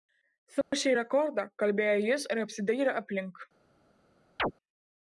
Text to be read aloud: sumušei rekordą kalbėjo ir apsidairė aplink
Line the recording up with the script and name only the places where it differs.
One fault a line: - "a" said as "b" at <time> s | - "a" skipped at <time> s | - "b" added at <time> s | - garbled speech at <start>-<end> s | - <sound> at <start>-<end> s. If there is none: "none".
- dropout at 0.6-0.7 s
- "jis" added at 2.1 s
- chirp at 4.4-4.5 s